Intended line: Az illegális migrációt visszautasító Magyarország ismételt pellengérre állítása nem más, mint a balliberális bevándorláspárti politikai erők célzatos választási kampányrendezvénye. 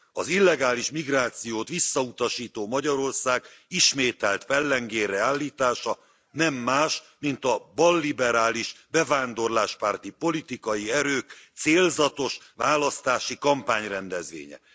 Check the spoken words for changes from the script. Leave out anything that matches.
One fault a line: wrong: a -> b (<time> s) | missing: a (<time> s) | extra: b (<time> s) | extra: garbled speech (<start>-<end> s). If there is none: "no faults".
no faults